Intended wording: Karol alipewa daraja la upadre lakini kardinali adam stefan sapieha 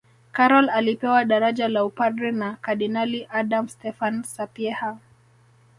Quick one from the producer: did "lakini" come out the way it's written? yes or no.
no